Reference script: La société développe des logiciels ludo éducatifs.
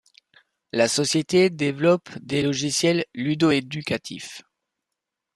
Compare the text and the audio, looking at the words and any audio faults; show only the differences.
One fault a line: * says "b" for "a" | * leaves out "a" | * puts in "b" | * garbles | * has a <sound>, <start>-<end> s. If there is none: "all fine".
all fine